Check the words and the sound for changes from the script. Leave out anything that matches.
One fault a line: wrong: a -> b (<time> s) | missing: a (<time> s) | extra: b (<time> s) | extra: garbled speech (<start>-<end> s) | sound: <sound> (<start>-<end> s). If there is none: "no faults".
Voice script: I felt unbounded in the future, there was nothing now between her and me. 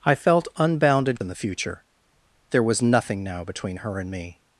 no faults